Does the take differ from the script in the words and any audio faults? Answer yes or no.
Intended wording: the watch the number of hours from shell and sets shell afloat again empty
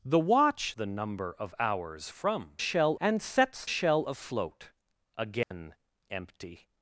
yes